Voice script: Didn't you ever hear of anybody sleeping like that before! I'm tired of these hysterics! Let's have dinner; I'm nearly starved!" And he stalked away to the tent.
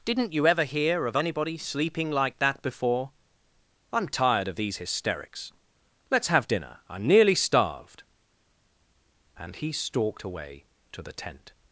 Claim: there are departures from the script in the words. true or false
false